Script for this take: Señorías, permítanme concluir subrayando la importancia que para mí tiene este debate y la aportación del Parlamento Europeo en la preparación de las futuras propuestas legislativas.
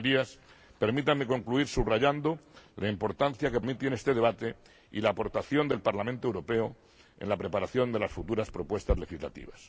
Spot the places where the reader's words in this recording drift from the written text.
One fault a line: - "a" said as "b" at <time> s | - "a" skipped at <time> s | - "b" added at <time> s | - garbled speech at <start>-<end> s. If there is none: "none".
- "para" skipped at 3.6 s